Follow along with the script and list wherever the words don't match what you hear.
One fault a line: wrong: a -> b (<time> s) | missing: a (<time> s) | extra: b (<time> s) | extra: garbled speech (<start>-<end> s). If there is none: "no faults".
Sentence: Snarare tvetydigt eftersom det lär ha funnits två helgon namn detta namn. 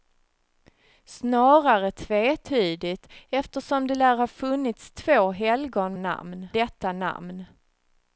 no faults